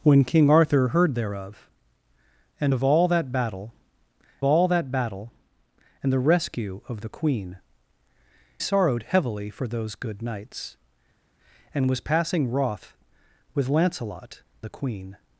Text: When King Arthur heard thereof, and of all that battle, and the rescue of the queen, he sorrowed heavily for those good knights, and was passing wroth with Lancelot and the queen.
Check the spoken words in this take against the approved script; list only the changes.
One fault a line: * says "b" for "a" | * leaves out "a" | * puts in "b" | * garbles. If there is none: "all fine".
* puts in "all that battle"
* leaves out "he"
* leaves out "and"